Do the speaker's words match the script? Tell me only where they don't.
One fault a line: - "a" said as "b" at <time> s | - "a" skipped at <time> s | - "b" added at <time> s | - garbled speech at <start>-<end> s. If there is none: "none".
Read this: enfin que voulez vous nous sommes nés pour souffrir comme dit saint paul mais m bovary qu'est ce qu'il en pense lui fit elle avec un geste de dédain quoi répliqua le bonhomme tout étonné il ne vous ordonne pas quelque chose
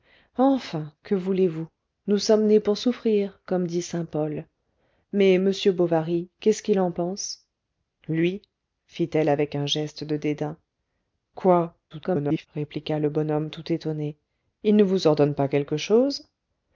- garbled speech at 11.9-12.5 s